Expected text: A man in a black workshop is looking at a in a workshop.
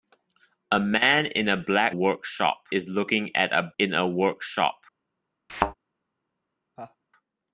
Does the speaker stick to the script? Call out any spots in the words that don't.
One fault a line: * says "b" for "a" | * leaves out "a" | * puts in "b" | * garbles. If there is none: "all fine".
all fine